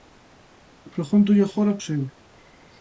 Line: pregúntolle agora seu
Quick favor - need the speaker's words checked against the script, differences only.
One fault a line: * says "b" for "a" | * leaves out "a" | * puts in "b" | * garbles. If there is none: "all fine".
all fine